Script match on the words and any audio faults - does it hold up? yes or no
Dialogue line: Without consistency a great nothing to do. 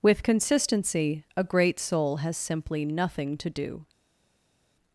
no